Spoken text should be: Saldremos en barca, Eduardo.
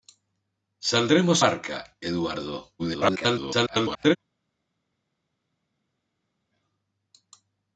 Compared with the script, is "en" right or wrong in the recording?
wrong